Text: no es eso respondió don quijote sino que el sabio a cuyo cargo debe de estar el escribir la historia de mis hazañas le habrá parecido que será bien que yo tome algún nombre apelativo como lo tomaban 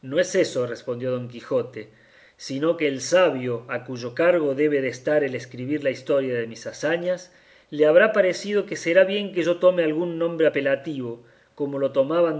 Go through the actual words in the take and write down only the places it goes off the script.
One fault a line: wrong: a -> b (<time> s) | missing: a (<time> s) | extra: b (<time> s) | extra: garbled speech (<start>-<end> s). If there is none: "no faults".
no faults